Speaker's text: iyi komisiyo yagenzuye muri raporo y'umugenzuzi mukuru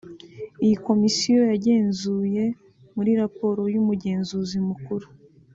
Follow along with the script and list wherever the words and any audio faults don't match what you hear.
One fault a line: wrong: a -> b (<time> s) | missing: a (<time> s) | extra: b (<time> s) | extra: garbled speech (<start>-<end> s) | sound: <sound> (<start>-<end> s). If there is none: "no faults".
no faults